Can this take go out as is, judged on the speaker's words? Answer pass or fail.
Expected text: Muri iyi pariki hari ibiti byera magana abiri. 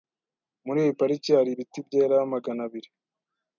pass